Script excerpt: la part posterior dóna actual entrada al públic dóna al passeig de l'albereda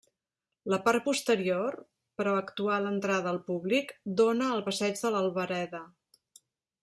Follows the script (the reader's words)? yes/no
no